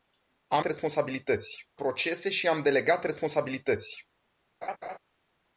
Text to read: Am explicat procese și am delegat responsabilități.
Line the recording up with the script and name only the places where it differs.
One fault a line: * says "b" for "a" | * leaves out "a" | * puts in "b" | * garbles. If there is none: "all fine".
* says "responsabilități" for "explicat"